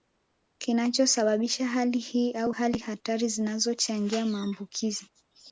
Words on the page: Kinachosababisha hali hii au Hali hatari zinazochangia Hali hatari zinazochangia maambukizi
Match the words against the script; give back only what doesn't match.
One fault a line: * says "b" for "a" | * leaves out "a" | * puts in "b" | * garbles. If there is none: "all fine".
* leaves out "Hali hatari zinazochangia"